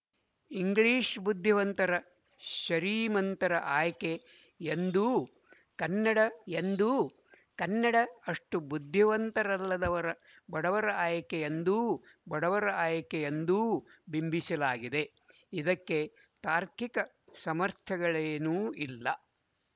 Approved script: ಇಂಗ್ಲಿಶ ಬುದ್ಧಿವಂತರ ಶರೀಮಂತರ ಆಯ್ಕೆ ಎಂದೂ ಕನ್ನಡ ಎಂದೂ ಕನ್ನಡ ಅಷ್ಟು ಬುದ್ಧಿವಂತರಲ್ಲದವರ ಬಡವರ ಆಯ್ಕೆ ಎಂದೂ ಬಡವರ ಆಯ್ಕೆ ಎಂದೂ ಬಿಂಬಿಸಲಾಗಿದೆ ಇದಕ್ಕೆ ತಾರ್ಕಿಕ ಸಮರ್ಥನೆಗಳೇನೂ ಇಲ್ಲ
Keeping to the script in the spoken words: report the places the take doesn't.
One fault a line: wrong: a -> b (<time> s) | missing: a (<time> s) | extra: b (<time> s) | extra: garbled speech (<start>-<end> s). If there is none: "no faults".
no faults